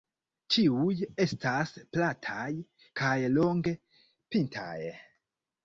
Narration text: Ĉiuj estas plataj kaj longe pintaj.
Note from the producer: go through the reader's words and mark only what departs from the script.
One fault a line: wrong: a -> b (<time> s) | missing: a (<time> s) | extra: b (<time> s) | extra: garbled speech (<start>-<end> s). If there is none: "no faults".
no faults